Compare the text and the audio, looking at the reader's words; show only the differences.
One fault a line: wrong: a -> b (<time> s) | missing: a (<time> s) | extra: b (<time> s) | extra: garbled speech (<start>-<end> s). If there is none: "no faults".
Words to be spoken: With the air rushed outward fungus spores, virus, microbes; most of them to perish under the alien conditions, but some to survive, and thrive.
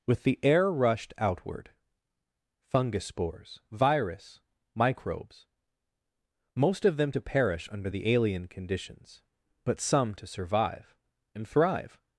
no faults